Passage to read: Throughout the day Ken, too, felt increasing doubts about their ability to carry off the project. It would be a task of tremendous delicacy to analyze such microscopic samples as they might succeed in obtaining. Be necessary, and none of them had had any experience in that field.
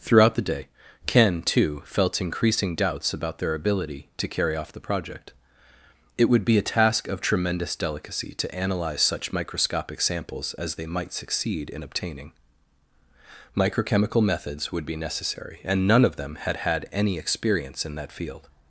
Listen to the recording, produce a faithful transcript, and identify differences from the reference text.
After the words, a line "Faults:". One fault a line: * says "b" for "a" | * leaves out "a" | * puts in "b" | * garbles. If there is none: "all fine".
Throughout the day Ken, too, felt increasing doubts about their ability to carry off the project. It would be a task of tremendous delicacy to analyze such microscopic samples as they might succeed in obtaining. Microchemical methods would be necessary, and none of them had had any experience in that field.
Faults:
* puts in "Microchemical methods would"